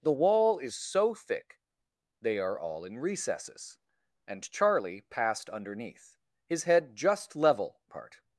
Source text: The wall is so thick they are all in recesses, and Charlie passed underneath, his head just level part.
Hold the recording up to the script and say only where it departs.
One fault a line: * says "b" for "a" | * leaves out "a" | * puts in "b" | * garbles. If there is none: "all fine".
all fine